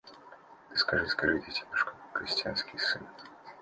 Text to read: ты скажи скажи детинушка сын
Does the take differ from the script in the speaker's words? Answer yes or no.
yes